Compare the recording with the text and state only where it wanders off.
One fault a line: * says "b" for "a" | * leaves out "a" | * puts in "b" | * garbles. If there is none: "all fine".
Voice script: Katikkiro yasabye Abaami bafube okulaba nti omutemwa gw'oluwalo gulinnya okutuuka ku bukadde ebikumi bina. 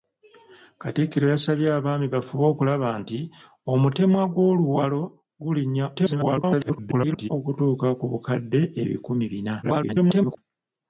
* garbles
* garbles